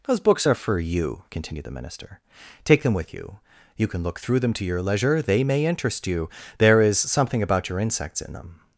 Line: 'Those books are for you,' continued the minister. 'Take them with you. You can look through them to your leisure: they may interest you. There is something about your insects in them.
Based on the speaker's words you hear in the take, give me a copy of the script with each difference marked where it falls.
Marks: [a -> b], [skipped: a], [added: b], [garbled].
'Those books are for you,' continued the minister. 'Take them with you. You can look through them to your leisure: they may interest you. There is something about your insects in them.